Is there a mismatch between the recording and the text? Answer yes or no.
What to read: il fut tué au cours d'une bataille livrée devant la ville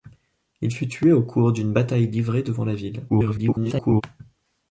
yes